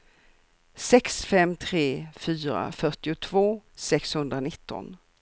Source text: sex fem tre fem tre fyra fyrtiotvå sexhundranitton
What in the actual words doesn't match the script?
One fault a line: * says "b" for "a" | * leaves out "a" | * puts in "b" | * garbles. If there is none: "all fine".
* leaves out "fem tre"